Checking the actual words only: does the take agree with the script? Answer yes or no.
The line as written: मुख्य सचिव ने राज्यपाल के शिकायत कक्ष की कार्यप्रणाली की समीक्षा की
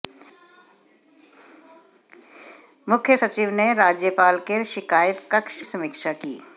no